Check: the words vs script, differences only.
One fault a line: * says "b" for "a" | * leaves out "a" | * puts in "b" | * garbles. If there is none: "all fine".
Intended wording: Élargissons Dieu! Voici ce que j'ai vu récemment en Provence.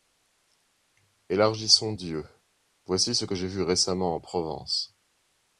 all fine